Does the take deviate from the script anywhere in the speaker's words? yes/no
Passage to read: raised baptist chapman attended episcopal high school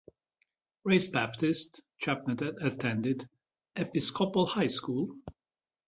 no